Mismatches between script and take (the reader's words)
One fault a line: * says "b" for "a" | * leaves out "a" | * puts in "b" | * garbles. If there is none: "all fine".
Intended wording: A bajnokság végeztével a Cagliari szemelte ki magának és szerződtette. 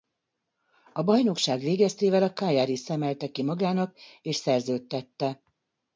all fine